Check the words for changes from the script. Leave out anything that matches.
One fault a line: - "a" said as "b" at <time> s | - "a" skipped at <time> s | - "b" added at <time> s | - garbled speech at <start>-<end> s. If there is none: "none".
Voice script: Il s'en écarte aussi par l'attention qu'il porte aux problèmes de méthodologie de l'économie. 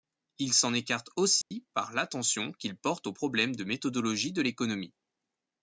none